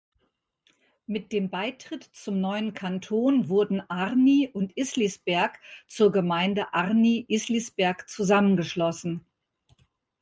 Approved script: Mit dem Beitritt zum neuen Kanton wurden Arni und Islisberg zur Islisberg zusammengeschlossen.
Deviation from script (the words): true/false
true